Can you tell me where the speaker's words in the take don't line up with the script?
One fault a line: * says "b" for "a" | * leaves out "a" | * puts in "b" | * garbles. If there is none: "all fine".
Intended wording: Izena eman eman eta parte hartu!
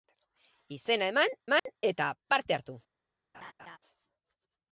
all fine